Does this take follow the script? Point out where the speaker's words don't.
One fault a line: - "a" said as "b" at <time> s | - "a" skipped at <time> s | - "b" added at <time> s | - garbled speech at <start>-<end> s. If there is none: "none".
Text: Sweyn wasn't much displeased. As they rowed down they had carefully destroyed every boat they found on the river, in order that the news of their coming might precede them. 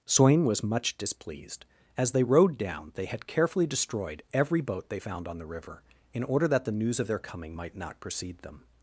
- "wasn't" said as "was" at 0.5 s
- "not" added at 7.8 s